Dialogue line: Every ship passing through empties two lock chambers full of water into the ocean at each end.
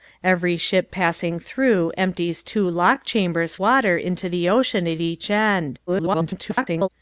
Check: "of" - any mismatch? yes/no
yes